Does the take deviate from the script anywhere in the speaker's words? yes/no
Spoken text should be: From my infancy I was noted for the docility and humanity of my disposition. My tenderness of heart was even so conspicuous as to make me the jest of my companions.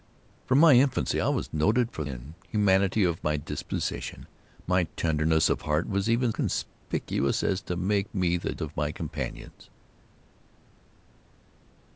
yes